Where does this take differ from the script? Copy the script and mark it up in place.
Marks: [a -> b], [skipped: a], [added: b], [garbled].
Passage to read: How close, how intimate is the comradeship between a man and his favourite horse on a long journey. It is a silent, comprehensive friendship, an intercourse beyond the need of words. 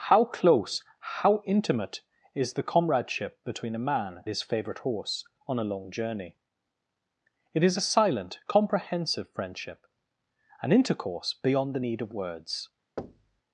How close, how intimate is the comradeship between a man [skipped: and] his favourite horse on a long journey. It is a silent, comprehensive friendship, an intercourse beyond the need of words.